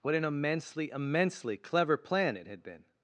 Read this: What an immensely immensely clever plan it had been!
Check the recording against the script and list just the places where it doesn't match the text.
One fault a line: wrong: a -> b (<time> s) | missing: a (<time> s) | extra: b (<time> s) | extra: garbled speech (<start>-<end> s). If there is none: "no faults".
no faults